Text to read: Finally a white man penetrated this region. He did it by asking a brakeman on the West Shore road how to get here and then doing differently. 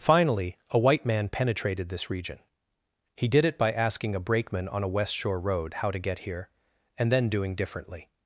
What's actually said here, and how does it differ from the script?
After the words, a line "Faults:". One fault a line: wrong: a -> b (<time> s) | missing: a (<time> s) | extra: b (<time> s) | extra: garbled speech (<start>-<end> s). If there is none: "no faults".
Finally a white man penetrated this region. He did it by asking a brakeman on a West Shore road how to get here and then doing differently.
Faults:
wrong: the -> a (4.8 s)